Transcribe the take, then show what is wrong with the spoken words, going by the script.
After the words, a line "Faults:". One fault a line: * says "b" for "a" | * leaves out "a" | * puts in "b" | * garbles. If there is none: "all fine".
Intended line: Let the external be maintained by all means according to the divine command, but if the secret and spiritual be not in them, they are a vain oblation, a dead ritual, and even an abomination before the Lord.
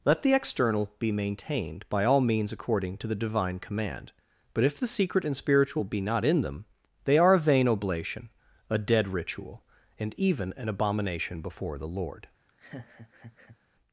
Let the external be maintained by all means according to the divine command, but if the secret and spiritual be not in them, they are a vain oblation, a dead ritual, and even an abomination before the Lord.
Faults:
all fine